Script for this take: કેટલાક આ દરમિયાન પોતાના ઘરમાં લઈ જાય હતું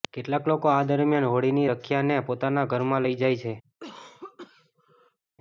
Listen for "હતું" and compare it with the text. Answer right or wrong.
wrong